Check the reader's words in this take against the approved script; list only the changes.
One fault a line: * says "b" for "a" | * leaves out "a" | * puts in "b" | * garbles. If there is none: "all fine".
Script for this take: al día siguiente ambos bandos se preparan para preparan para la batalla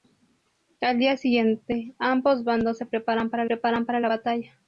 all fine